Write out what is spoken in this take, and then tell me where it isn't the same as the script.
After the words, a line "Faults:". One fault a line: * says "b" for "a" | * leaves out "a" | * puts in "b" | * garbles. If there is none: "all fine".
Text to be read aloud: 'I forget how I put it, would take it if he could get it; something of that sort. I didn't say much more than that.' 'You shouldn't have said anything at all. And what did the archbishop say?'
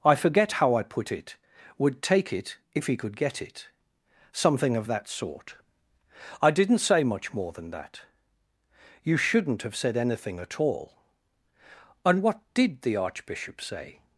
'I forget how I put it, would take it if he could get it; something of that sort. I didn't say much more than that.' 'You shouldn't have said anything at all. And what did the archbishop say?'
Faults:
all fine